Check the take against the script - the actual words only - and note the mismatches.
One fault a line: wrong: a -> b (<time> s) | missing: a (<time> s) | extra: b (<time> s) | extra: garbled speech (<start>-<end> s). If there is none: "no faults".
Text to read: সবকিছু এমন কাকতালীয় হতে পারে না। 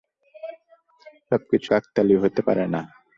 missing: এমন (1.7 s)